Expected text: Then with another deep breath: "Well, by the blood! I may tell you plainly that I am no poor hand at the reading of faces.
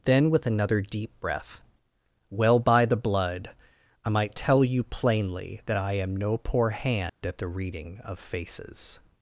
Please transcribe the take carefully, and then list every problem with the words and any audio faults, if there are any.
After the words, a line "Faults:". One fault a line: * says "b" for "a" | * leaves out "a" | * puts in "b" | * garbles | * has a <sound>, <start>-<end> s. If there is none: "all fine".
Then with another deep breath: "Well, by the blood! I might tell you plainly that I am no poor hand at the reading of faces.
Faults:
* says "might" for "may"
* has a dropout, 7.1-7.2 s